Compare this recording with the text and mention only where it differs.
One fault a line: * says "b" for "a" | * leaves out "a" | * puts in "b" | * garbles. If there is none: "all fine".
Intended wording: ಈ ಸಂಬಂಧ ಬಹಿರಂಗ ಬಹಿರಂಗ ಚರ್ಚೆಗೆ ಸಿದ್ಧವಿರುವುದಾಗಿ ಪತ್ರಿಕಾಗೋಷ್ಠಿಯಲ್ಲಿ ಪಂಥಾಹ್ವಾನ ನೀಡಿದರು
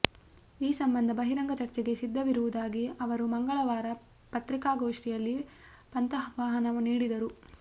* leaves out "ಬಹಿರಂಗ"
* puts in "ಅವರು ಮಂಗಳವಾರ"